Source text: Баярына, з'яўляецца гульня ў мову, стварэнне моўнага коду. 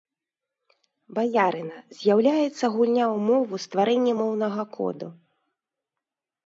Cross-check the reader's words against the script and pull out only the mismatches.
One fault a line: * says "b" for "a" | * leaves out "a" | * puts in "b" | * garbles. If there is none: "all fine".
all fine